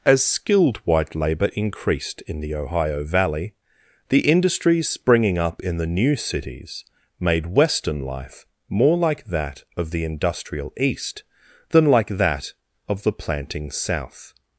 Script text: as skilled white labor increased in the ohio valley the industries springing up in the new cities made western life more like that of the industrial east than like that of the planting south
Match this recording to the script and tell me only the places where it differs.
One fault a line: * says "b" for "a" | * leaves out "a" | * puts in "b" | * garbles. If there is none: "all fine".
all fine